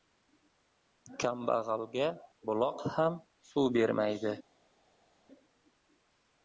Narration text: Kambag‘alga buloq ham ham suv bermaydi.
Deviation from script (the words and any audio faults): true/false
true